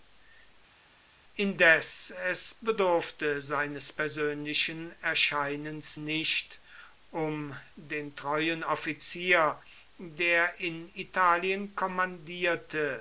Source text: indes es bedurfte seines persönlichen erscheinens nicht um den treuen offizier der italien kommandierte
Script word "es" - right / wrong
right